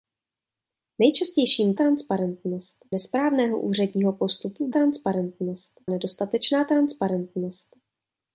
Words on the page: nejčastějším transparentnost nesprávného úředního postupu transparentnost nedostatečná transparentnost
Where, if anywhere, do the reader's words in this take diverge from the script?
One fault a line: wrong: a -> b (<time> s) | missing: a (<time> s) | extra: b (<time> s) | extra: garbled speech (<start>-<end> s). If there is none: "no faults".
no faults